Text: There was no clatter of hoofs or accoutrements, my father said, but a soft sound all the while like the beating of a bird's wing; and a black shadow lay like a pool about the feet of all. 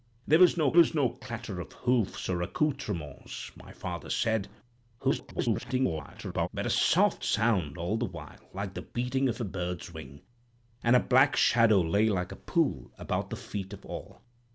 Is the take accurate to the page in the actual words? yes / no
no